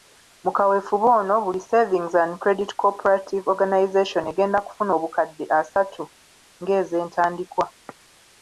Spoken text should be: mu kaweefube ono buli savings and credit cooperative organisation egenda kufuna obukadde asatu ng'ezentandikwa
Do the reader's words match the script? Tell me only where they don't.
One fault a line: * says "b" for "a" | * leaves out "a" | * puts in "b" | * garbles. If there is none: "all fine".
all fine